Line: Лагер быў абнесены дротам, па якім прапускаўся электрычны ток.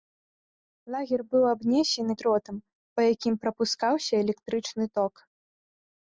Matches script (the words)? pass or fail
pass